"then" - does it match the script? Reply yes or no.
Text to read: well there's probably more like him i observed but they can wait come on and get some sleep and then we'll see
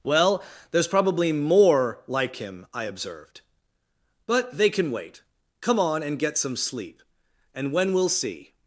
no